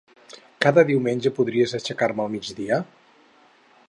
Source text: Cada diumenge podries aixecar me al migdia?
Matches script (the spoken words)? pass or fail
pass